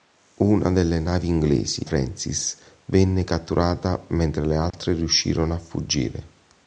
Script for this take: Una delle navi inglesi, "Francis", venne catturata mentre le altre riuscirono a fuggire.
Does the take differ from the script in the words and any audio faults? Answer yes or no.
yes